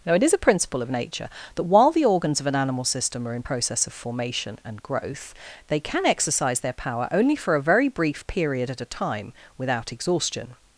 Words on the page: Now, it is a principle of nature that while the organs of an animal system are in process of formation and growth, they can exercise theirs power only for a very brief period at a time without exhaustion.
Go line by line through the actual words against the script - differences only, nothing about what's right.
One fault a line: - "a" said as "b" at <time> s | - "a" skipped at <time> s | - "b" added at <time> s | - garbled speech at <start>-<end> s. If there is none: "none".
- "theirs" said as "their" at 6.6 s